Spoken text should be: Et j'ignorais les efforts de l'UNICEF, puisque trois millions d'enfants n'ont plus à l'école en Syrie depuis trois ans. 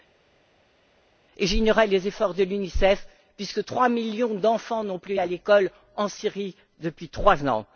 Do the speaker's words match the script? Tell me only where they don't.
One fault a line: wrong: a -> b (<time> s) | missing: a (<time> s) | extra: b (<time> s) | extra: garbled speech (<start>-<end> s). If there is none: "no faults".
no faults